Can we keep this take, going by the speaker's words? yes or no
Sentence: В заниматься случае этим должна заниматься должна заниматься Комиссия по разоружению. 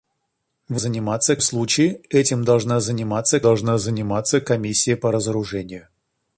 yes